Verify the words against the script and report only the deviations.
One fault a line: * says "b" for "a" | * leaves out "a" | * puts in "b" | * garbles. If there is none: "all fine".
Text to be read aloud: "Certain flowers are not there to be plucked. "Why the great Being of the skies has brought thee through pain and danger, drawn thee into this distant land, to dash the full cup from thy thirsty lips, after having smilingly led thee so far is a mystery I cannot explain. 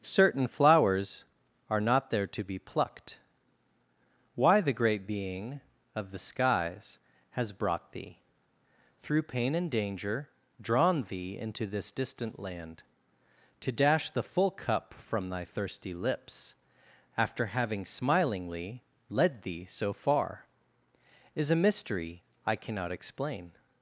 all fine